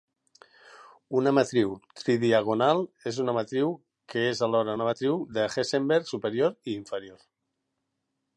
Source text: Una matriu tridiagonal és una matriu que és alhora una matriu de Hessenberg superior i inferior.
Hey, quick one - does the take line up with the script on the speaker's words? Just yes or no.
yes